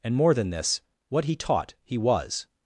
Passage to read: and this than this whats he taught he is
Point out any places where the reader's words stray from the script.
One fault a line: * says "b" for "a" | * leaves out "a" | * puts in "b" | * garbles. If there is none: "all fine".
* says "more" for "this"
* says "what" for "whats"
* says "was" for "is"